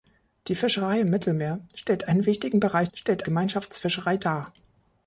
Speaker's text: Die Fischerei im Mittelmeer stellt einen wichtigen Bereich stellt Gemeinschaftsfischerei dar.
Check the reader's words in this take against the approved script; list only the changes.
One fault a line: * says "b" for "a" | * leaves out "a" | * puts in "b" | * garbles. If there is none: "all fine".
all fine